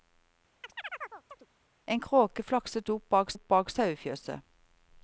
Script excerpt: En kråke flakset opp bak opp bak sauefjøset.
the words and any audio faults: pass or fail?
fail